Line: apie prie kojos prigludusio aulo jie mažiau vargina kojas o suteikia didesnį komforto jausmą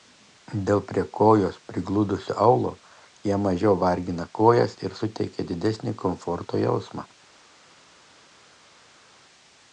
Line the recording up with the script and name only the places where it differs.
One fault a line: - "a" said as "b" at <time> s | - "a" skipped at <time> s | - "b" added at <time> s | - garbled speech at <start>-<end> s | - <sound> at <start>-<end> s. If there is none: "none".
- "apie" said as "dėl" at 0.7 s
- "o" said as "ir" at 4.9 s